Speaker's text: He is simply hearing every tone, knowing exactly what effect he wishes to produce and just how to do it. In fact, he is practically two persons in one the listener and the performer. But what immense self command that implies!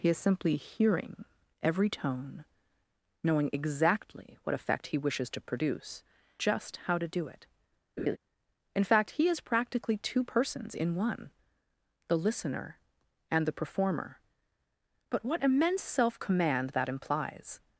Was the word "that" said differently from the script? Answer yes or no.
no